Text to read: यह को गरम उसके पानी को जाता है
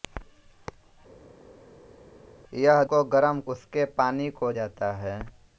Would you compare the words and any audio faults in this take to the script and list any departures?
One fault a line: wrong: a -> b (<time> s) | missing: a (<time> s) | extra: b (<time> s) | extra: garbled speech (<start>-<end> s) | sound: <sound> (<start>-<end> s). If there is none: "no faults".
no faults